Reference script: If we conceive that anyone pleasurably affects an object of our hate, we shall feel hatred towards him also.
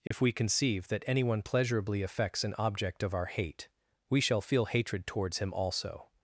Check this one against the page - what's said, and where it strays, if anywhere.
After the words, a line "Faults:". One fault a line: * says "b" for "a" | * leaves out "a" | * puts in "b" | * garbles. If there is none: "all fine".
If we conceive that anyone pleasurably affects an object of our hate, we shall feel hatred towards him also.
Faults:
all fine